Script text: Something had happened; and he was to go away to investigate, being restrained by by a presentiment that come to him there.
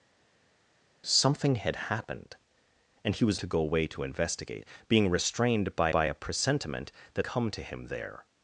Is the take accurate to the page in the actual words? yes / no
yes